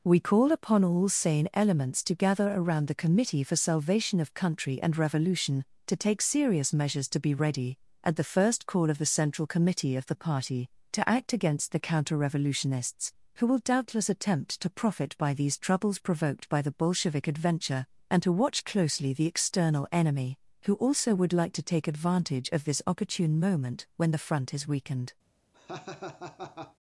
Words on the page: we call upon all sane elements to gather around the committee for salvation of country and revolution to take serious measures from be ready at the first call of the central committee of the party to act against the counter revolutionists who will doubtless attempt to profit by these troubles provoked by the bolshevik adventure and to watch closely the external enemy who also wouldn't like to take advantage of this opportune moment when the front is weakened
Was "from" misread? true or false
true